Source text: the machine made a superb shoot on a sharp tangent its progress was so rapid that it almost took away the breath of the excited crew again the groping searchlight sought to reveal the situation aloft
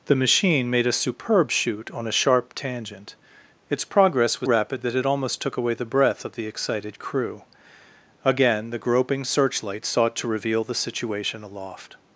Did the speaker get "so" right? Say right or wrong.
wrong